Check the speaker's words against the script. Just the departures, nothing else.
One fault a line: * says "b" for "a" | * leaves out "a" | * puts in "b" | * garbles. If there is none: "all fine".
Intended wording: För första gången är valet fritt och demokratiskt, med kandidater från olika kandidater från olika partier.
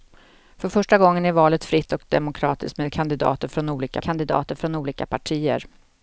all fine